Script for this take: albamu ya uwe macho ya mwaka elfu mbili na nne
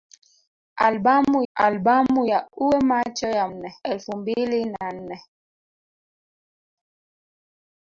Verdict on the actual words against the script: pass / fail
fail